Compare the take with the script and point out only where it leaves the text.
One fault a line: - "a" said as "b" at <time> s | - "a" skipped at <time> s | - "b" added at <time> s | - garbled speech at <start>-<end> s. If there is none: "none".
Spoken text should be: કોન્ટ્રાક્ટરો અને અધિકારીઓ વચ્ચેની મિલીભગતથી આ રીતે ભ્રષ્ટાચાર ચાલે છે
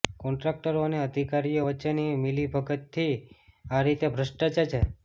- "ચાલે" skipped at 4.7 s